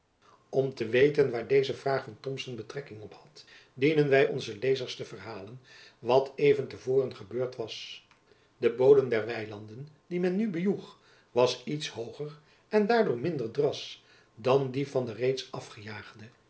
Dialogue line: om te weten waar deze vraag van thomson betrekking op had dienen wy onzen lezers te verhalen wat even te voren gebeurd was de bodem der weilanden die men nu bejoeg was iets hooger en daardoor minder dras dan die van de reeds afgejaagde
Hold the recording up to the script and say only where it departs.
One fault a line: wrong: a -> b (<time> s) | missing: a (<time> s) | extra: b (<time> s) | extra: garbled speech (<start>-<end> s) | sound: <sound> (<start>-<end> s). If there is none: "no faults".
no faults